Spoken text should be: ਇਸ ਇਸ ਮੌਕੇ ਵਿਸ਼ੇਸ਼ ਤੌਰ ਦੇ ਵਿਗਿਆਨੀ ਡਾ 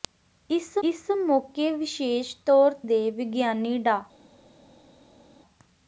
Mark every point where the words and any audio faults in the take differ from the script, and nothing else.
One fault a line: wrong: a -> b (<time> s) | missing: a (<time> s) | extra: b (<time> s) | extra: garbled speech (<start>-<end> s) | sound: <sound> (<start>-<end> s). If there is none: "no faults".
no faults